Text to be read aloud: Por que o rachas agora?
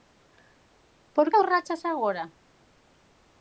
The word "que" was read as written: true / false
false